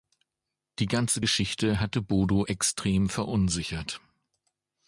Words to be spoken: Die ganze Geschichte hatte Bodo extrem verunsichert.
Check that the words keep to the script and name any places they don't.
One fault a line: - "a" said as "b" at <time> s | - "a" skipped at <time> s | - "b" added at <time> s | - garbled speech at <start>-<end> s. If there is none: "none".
none